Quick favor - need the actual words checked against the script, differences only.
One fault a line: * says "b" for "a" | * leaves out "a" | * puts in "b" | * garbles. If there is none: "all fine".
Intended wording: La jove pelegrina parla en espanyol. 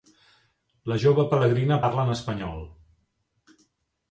all fine